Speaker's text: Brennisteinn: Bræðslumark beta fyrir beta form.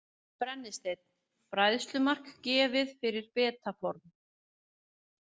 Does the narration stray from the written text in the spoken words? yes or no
yes